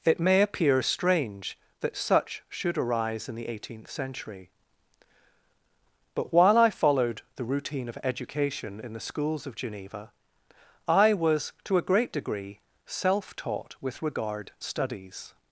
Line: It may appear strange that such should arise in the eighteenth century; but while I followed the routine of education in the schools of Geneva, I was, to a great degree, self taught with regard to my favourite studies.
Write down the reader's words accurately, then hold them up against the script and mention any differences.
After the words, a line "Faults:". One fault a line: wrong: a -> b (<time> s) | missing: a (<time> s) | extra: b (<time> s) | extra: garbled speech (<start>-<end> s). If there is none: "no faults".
It may appear strange that such should arise in the eighteenth century; but while I followed the routine of education in the schools of Geneva, I was, to a great degree, self taught with regard studies.
Faults:
missing: to my favourite (14.5 s)